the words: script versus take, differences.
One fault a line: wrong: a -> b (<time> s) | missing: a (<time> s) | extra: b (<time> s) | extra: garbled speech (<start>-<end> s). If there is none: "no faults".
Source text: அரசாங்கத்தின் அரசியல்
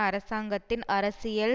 no faults